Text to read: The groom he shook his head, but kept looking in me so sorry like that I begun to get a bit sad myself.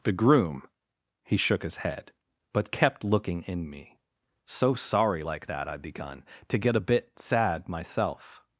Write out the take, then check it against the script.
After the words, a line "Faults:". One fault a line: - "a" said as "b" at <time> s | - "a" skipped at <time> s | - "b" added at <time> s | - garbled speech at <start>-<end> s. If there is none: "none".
The groom he shook his head, but kept looking in me so sorry like that I begun to get a bit sad myself.
Faults:
none